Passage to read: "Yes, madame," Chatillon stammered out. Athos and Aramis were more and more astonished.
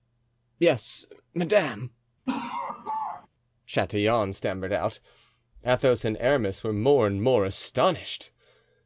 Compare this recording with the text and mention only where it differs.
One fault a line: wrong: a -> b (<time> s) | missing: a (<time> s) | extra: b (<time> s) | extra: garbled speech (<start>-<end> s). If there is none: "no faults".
no faults